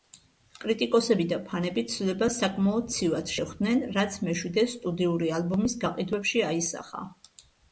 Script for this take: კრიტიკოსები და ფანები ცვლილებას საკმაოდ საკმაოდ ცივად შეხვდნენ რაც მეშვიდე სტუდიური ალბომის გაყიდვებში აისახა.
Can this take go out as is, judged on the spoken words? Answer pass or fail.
fail